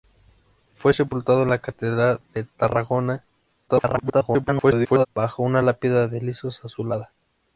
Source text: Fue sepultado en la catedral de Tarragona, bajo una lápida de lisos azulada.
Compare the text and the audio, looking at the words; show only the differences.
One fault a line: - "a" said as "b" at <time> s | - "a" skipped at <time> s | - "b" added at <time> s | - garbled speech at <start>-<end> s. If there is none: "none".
- garbled speech at 3.7-5.1 s